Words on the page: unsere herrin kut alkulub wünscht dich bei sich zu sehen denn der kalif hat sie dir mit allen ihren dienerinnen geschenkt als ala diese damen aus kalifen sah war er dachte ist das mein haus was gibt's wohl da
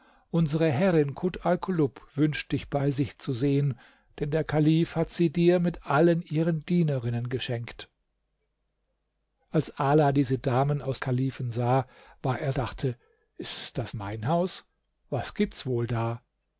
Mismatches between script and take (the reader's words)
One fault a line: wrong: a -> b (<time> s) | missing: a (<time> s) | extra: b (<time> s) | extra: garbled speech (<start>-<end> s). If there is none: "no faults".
no faults